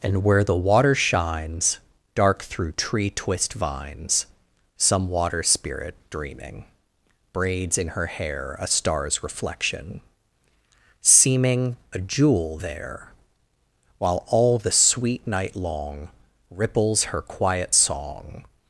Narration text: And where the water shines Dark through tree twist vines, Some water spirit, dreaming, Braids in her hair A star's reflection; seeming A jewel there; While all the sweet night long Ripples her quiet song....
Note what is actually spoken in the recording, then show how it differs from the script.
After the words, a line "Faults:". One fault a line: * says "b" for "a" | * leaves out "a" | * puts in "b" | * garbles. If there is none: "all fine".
And where the water shines Dark through tree twist vines, Some water spirit, dreaming, Braids in her hair A star's reflection; seeming A jewel there; While all the sweet night long Ripples her quiet song....
Faults:
all fine